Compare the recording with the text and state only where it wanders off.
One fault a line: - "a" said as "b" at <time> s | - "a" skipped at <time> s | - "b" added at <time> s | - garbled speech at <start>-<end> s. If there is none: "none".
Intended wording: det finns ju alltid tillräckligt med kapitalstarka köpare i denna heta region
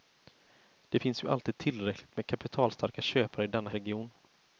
- "heta" skipped at 3.7 s